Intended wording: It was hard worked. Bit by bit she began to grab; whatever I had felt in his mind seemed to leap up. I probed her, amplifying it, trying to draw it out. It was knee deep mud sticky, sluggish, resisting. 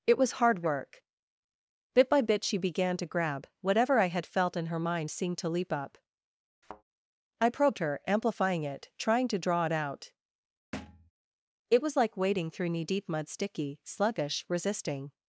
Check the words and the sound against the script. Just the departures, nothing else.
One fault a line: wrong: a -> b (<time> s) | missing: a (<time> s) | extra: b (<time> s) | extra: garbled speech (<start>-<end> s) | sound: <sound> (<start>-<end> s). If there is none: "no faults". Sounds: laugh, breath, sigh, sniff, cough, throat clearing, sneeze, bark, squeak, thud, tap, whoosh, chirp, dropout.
wrong: worked -> work (0.6 s)
wrong: his -> her (4.7 s)
sound: thud (6.6-6.8 s)
sound: thud (10.7-11.1 s)
extra: like wading through (12.0 s)